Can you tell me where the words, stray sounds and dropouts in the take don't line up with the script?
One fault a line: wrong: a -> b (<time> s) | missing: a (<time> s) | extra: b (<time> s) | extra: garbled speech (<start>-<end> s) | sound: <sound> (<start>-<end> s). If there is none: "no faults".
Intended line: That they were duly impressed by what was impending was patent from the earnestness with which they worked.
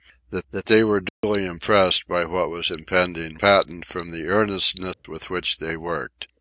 extra: that (0.5 s)
sound: dropout (1.1-1.2 s)
missing: was (3.4 s)
sound: dropout (4.9-5.0 s)